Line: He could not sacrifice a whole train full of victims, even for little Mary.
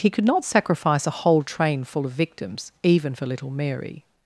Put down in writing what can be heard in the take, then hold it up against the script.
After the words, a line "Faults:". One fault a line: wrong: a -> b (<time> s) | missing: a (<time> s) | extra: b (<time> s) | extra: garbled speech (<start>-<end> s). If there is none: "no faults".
He could not sacrifice a whole train full of victims, even for little Mary.
Faults:
no faults